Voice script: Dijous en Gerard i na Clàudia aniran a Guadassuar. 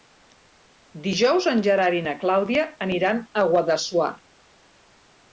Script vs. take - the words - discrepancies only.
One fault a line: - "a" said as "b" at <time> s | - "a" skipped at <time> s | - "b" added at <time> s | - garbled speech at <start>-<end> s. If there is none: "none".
none